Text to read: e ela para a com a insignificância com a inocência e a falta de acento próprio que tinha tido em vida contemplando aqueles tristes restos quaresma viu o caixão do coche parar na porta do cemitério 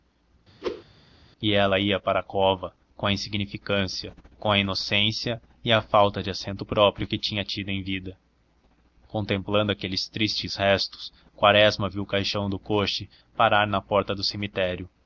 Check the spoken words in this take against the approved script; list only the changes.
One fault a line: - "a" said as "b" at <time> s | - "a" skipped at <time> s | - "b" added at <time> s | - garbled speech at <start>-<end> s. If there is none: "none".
- "ia" added at 1.8 s
- "cova" added at 2.2 s